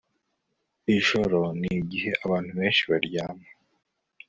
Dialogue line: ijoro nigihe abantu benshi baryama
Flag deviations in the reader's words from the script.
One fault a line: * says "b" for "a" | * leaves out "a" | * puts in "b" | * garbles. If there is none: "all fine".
all fine